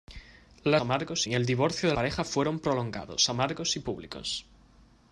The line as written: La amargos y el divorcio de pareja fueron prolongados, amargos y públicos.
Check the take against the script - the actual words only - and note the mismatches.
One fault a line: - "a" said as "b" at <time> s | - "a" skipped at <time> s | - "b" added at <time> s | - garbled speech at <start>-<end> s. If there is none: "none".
none